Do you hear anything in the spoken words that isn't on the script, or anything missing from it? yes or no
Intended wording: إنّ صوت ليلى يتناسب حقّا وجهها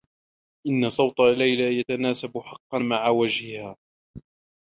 yes